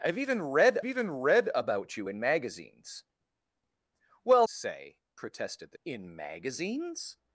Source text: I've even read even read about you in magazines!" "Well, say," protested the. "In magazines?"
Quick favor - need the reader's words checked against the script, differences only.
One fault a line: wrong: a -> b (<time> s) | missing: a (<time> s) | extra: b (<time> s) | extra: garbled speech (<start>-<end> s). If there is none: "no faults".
no faults